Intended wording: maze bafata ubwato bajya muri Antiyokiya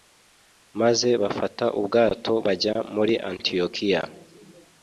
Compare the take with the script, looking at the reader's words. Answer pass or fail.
pass